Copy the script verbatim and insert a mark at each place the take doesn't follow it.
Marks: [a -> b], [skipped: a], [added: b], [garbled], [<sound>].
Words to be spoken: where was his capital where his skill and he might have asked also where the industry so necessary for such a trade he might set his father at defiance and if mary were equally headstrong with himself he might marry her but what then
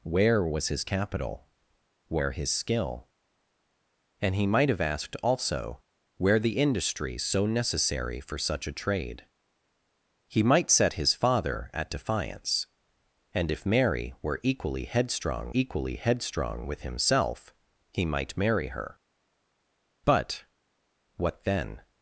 where was his capital where his skill and he might have asked also where the industry so necessary for such a trade he might set his father at defiance and if mary were equally headstrong [added: equally headstrong] with himself he might marry her but what then